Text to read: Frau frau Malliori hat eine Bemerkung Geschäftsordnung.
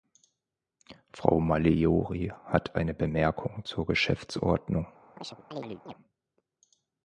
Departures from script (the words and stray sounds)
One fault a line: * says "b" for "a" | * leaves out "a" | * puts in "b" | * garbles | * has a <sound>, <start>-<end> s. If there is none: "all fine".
* leaves out "frau"
* puts in "zur"
* has a chirp, 5.2-5.9 s